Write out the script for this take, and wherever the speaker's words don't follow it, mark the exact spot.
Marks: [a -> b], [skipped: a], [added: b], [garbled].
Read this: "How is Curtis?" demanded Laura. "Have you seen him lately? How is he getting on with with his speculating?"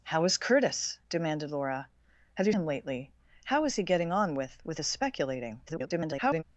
"How is Curtis?" demanded Laura. "Have you [skipped: seen] him lately? How is he getting on with with his speculating?" [garbled]